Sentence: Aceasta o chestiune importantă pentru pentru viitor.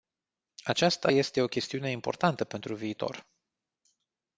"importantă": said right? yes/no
yes